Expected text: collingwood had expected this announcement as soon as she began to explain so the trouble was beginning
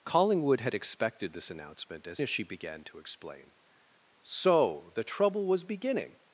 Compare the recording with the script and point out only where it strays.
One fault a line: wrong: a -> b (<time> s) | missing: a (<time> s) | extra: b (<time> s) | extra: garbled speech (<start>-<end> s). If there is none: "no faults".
missing: soon (2.2 s)